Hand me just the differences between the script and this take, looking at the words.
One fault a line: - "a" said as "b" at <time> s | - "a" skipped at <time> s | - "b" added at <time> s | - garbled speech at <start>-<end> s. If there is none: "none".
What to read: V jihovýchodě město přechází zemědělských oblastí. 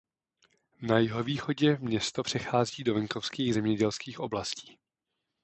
- "V" said as "Na" at 0.8 s
- "do venkovských" added at 2.8 s